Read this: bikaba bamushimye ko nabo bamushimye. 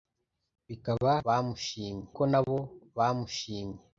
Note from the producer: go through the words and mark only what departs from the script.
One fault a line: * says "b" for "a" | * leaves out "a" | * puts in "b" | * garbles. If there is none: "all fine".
all fine